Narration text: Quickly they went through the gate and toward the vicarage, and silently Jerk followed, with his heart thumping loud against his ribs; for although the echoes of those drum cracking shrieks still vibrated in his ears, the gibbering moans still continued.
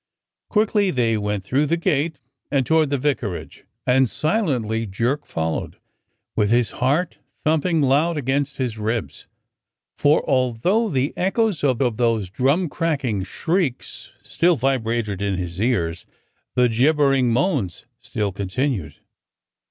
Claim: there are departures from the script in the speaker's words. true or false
true